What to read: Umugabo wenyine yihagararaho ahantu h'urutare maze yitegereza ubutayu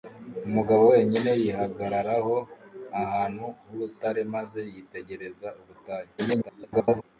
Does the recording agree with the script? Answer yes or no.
no